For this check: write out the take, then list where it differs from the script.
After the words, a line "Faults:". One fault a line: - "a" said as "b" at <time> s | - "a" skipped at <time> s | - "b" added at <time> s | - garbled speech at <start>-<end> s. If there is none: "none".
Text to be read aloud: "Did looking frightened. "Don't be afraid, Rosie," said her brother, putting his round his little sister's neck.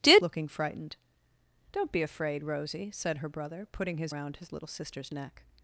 "Did looking frightened. "Don't be afraid, Rosie," said her brother, putting his round his little sister's neck.
Faults:
none